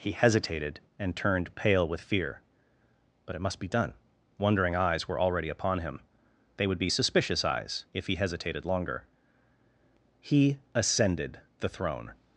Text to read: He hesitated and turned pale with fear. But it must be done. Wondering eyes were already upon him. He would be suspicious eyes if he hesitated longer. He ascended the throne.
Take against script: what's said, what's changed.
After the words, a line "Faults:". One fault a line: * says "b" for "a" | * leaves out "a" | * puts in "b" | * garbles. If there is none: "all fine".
He hesitated and turned pale with fear. But it must be done. Wondering eyes were already upon him. They would be suspicious eyes if he hesitated longer. He ascended the throne.
Faults:
* says "They" for "He"